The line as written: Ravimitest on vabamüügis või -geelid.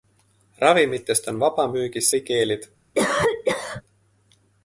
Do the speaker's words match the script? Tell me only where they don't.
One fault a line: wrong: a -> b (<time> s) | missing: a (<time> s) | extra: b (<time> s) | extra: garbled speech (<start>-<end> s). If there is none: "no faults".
no faults